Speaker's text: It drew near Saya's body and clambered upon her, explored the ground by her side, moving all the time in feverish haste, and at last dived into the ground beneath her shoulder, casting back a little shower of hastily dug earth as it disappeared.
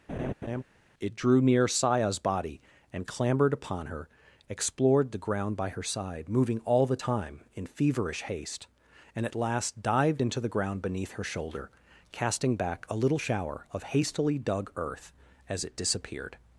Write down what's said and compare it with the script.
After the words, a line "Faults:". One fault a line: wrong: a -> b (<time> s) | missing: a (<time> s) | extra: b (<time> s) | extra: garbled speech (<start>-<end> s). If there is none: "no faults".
It drew near Saya's body and clambered upon her, explored the ground by her side, moving all the time in feverish haste, and at last dived into the ground beneath her shoulder, casting back a little shower of hastily dug earth as it disappeared.
Faults:
no faults